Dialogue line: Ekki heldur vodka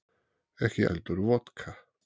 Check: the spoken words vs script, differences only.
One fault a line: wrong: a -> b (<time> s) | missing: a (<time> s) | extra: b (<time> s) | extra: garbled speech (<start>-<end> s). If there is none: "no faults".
no faults